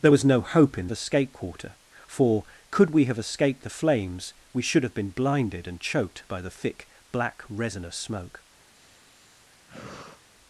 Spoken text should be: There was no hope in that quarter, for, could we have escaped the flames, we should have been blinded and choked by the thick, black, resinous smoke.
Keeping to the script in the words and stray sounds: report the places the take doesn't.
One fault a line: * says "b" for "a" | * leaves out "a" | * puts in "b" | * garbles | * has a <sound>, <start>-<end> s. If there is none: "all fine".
* says "escaped" for "that"
* has a sigh, 8.7-10.2 s